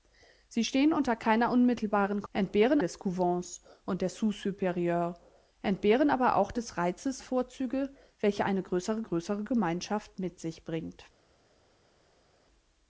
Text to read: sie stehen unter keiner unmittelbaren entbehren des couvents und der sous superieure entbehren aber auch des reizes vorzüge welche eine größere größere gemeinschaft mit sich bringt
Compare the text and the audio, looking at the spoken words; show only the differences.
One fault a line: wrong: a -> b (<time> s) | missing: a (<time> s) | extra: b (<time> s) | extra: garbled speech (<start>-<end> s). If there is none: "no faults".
no faults